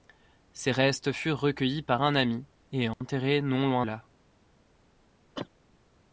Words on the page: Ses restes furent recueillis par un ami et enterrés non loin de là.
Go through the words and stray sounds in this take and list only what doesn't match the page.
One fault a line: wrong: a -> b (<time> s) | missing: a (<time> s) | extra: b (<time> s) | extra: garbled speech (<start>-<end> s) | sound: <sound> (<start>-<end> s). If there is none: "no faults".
sound: dropout (2.9-3.0 s)
missing: de (3.9 s)
sound: cough (5.3-5.5 s)